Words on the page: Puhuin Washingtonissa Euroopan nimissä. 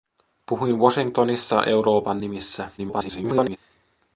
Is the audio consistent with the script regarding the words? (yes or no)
no